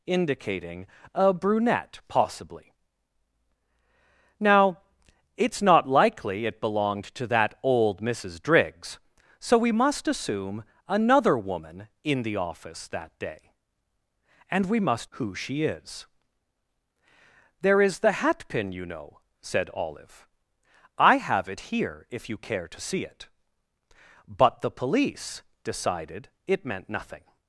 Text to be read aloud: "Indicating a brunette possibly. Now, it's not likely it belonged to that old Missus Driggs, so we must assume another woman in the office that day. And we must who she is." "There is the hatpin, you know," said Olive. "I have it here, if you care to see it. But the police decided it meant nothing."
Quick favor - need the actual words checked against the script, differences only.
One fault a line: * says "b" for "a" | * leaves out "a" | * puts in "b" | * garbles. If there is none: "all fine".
all fine